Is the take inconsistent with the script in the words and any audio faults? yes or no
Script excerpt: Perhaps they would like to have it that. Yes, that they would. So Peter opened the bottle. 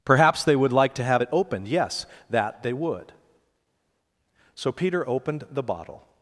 yes